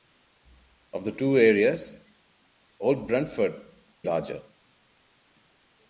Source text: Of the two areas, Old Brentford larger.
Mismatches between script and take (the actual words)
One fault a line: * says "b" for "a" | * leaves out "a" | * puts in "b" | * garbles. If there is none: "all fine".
all fine